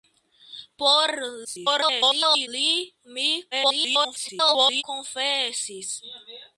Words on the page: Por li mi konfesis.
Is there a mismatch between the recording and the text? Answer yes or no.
yes